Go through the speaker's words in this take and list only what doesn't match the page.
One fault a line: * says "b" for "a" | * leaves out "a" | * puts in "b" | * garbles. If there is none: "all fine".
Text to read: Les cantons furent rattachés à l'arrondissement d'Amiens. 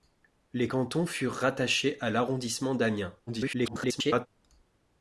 * garbles